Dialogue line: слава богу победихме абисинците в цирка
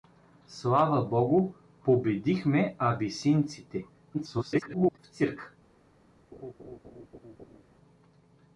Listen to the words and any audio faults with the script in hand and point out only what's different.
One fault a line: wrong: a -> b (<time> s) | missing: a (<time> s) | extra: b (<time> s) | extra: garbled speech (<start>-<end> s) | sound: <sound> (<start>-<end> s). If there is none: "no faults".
extra: garbled speech (4.1-5.0 s)
sound: laugh (6.3-7.6 s)